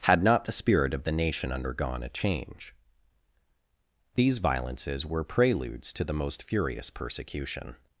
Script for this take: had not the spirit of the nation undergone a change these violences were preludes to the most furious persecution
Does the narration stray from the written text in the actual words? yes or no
no